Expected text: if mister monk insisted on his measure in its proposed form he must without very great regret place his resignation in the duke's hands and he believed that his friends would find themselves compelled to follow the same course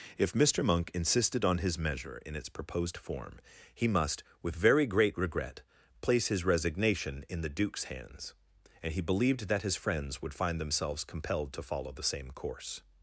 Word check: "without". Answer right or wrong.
wrong